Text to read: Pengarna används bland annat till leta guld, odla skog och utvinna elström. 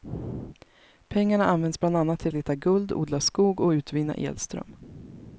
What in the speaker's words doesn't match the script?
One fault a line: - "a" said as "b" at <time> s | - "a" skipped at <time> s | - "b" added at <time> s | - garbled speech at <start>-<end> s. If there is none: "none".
none